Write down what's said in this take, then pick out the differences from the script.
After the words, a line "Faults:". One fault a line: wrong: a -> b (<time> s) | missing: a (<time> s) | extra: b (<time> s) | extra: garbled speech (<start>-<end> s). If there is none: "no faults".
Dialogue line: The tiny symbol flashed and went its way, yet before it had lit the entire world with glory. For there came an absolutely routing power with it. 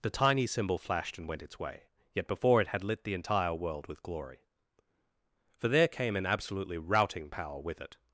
The tiny symbol flashed and went its way, yet before it had lit the entire world with glory. For there came an absolutely routing power with it.
Faults:
no faults